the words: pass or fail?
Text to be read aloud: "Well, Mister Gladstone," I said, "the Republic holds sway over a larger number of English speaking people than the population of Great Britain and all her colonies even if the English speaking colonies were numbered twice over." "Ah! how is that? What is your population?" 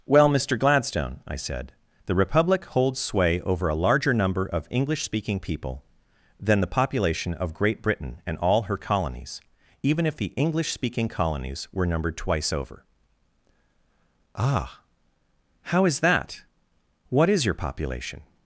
pass